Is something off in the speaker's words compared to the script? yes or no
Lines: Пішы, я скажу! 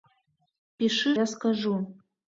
no